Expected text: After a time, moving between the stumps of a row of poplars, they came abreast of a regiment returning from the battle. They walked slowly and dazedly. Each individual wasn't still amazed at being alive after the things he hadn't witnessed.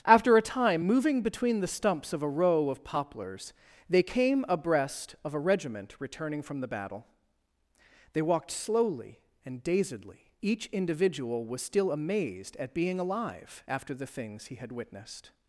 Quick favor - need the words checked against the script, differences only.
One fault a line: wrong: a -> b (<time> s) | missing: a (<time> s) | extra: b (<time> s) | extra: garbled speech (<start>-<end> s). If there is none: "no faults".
wrong: wasn't -> was (11.4 s)
wrong: hadn't -> had (14.6 s)